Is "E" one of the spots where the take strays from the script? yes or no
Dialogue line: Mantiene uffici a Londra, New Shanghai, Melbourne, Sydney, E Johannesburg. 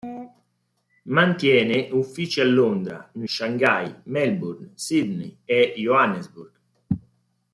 no